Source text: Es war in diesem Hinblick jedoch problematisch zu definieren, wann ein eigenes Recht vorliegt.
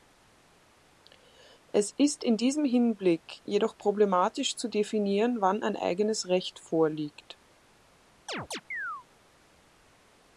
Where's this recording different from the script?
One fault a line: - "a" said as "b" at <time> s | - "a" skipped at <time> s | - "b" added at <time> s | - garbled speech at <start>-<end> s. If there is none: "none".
- "war" said as "ist" at 1.9 s